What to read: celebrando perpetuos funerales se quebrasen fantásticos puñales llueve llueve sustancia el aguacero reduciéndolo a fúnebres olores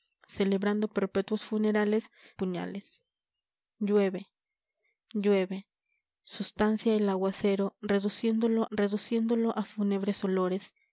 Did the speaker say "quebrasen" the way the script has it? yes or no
no